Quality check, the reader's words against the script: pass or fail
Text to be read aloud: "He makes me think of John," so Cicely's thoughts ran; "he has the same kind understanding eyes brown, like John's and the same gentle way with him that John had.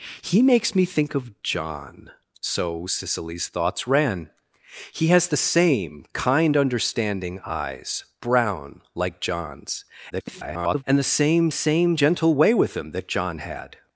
fail